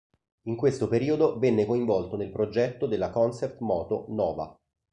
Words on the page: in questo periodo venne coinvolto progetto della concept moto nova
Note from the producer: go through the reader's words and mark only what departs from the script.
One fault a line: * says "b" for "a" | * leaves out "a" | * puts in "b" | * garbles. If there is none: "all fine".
* puts in "nel"